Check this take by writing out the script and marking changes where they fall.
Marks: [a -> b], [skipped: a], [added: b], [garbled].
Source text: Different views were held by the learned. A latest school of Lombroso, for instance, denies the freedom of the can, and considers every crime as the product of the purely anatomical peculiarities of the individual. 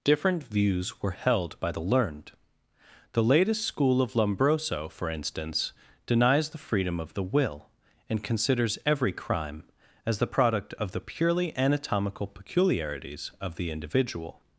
Different views were held by the learned. [A -> The] latest school of Lombroso, for instance, denies the freedom of the [can, -> will] and considers every crime as the product of the purely anatomical peculiarities of the individual.